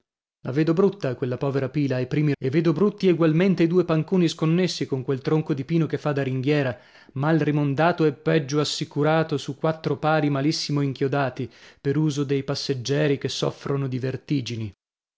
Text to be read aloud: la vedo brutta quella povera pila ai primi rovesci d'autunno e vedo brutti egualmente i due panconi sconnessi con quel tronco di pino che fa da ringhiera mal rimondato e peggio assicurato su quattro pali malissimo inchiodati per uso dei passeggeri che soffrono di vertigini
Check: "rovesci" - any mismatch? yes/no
yes